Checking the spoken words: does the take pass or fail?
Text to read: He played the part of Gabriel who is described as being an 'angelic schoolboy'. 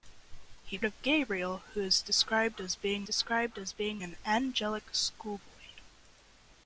fail